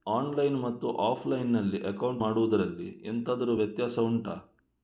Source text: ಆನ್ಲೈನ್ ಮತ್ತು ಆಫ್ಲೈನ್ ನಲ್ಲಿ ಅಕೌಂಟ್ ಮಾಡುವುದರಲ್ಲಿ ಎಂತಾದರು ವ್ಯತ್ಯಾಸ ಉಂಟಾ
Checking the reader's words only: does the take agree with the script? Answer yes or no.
yes